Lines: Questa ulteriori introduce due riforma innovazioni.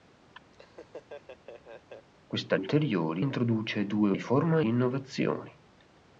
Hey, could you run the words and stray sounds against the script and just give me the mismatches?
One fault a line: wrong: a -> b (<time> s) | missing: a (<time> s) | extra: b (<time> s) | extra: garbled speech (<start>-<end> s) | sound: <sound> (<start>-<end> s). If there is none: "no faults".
sound: laugh (0.5-2.1 s)